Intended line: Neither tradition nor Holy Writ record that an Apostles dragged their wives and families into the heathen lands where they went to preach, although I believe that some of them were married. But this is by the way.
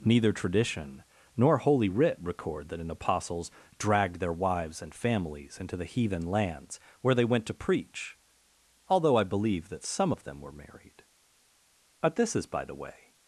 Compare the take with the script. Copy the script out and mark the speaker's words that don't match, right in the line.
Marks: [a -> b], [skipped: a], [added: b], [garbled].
Neither tradition nor Holy Writ record that an Apostles dragged their wives and families into the heathen lands where they went to preach, although I believe that some of them were married. But this is by the way.